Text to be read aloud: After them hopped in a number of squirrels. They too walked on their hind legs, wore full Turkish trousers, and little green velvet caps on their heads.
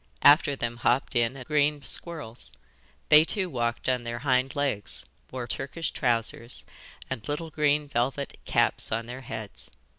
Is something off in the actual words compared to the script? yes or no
yes